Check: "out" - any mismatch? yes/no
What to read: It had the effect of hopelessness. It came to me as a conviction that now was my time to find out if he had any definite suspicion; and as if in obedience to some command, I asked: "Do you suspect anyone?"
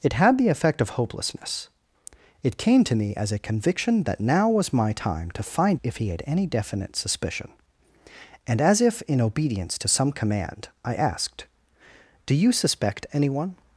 yes